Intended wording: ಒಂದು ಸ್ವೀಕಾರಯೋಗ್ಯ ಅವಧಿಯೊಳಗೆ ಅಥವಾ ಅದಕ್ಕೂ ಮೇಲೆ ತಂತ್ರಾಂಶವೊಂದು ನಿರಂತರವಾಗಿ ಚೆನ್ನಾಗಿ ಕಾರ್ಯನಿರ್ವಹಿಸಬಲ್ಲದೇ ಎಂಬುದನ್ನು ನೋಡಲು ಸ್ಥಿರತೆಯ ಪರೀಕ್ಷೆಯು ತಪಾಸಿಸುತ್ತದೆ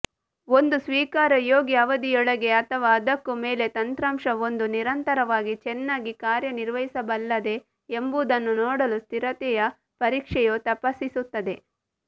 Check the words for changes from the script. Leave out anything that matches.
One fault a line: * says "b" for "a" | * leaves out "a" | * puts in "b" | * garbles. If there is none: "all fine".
all fine